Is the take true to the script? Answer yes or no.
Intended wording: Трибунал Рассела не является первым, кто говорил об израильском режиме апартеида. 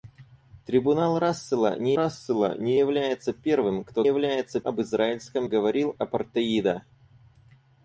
no